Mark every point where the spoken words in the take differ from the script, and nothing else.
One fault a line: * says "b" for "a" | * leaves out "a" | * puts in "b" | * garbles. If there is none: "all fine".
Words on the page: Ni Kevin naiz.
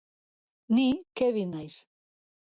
all fine